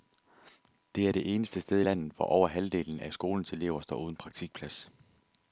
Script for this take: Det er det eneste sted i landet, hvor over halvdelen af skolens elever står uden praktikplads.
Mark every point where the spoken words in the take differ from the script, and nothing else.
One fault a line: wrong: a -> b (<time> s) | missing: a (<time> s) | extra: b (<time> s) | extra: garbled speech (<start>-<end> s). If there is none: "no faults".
no faults